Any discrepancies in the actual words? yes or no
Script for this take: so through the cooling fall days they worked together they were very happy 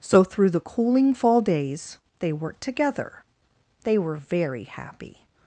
no